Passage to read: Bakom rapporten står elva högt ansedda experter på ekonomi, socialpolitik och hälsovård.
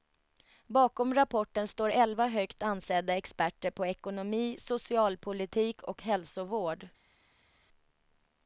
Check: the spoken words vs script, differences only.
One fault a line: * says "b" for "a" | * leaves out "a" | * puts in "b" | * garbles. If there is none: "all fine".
all fine